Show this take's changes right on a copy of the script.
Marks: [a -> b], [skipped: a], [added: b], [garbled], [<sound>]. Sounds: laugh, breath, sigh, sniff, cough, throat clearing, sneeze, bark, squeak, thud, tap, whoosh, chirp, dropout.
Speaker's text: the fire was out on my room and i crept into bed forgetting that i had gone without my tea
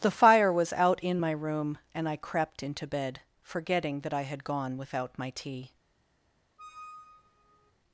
the fire was out [on -> in] my room and i crept into bed forgetting that i had gone without my tea [squeak]